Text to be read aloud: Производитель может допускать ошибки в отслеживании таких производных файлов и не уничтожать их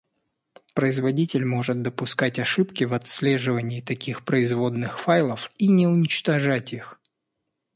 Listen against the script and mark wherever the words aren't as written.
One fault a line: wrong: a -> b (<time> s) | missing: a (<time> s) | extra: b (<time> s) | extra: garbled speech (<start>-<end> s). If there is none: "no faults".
no faults